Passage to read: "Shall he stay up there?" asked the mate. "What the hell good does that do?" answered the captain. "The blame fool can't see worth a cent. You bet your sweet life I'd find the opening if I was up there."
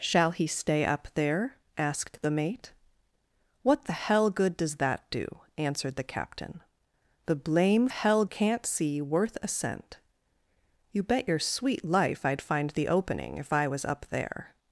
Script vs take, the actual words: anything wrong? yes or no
yes